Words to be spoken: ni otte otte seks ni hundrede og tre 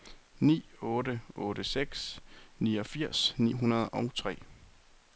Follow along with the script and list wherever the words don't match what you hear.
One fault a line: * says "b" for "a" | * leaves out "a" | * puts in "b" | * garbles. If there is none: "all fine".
* puts in "niogfirs"